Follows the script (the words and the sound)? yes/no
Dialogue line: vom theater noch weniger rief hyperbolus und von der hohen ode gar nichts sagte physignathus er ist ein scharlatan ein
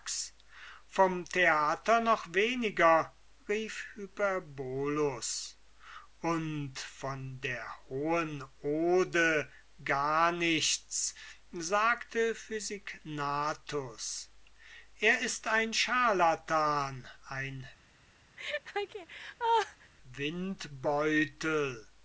no